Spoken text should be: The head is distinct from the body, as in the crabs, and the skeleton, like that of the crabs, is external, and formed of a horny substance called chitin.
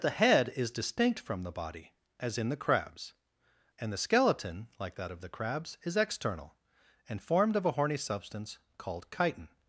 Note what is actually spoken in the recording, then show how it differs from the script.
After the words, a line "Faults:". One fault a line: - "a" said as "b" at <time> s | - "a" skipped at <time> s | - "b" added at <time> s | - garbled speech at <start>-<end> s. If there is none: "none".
The head is distinct from the body, as in the crabs, and the skeleton, like that of the crabs, is external, and formed of a horny substance called chitin.
Faults:
none